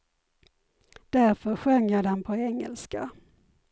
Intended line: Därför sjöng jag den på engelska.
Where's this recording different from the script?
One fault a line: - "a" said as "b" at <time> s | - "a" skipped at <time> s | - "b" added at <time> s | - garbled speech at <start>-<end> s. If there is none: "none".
none